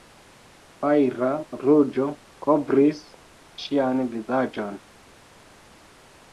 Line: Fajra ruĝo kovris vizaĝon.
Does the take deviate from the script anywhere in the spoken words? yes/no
yes